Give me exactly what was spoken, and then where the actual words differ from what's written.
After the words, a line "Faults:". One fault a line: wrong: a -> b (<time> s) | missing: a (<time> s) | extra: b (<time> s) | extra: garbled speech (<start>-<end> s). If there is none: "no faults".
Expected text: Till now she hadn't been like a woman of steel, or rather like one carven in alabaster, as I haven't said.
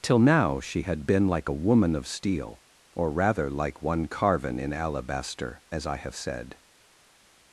Till now she had been like a woman of steel, or rather like one carven in alabaster, as I have said.
Faults:
wrong: hadn't -> had (0.8 s)
wrong: haven't -> have (6.0 s)